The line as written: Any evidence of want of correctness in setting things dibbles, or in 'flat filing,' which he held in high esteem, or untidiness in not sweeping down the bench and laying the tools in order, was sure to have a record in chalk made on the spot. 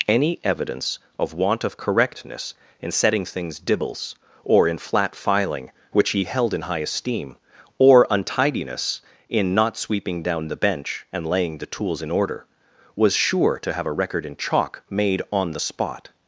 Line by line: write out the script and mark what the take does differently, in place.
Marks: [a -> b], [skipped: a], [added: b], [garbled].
Any evidence of want of correctness in setting things dibbles, or in 'flat filing,' which he held in high esteem, or untidiness in not sweeping down the bench and laying the tools in order, was sure to have a record in chalk made on the spot.